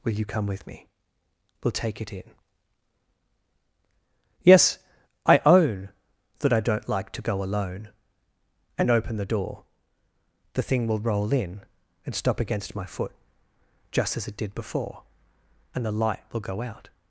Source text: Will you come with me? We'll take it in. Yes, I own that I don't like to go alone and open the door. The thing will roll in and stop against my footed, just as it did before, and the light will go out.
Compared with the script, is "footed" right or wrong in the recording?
wrong